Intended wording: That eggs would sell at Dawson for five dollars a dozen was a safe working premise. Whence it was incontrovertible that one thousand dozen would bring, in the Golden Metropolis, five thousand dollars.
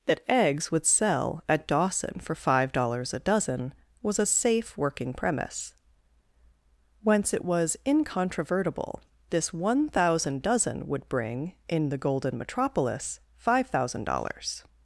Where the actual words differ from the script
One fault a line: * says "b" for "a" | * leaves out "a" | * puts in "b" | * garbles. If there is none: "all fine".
* says "this" for "that"